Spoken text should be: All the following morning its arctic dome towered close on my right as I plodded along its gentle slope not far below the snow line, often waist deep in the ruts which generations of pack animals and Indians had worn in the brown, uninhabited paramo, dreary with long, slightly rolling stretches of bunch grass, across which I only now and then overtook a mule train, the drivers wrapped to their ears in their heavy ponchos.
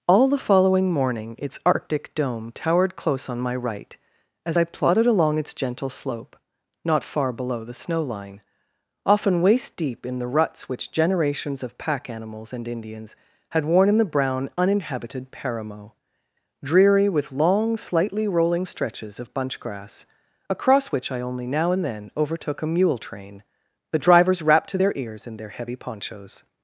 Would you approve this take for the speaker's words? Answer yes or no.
yes